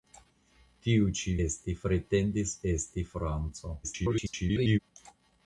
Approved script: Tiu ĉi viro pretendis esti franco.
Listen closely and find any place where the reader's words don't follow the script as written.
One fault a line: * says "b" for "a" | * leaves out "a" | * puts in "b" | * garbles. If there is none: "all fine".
* says "esti" for "viro"
* garbles